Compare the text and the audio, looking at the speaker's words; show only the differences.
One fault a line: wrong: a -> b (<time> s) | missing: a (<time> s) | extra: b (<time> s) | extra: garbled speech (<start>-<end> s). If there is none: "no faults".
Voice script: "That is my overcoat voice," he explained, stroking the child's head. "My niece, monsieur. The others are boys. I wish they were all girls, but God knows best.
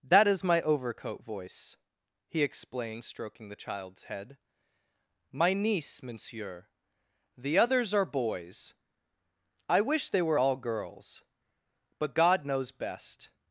no faults